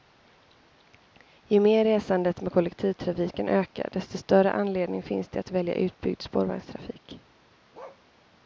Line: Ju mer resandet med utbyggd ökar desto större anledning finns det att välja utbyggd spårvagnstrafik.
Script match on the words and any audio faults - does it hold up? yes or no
no